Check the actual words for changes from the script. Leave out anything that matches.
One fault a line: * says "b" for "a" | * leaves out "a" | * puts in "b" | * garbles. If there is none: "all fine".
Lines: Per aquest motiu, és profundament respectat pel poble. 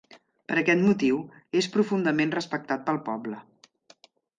all fine